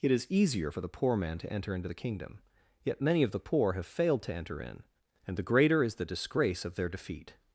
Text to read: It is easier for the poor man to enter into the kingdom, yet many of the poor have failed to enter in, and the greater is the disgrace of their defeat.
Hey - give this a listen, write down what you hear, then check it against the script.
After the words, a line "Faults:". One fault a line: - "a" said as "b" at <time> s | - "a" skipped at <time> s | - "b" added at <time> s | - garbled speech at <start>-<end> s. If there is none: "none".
It is easier for the poor man to enter into the kingdom, yet many of the poor have failed to enter in, and the greater is the disgrace of their defeat.
Faults:
none